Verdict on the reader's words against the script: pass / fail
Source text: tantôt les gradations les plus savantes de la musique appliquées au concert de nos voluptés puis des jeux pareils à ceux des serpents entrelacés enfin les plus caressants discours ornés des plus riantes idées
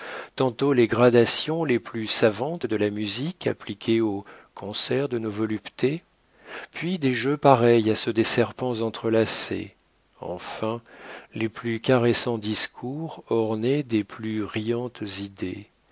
pass